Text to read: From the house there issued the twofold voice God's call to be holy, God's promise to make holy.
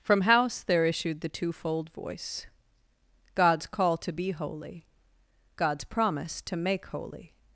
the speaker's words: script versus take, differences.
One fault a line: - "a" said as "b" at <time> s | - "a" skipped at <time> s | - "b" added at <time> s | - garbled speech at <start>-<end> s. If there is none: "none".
- "the" skipped at 0.2 s